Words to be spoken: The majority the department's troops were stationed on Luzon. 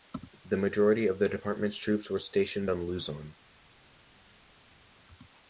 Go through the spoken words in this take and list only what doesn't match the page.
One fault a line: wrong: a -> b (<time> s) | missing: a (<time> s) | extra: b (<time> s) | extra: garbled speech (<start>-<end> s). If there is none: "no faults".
extra: of (1.1 s)